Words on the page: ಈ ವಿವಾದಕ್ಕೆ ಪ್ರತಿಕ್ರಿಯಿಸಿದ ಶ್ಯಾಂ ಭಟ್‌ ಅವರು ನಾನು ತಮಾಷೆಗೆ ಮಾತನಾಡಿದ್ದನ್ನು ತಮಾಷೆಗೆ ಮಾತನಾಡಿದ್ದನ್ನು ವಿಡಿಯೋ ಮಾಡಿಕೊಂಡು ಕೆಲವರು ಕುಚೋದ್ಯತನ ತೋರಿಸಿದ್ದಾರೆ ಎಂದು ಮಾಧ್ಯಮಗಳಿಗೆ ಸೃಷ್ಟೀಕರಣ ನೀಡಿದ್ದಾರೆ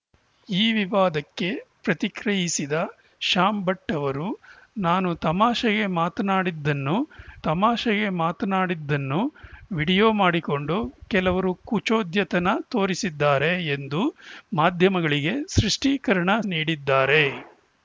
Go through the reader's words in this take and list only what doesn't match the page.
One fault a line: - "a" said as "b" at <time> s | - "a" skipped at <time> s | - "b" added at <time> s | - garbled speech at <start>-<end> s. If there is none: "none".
none